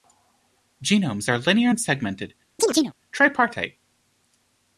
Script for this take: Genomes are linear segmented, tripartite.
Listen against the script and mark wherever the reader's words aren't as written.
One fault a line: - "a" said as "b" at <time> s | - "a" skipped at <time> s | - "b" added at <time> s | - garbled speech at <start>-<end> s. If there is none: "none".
- "and" added at 1.7 s